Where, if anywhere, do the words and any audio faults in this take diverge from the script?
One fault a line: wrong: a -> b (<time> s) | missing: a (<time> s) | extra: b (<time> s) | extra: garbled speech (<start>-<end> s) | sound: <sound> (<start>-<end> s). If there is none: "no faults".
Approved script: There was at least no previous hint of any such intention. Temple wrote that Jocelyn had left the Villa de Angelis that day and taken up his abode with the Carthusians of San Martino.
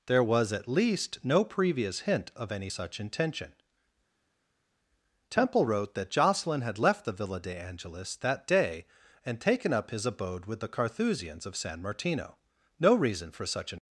extra: No reason for such an (12.8 s)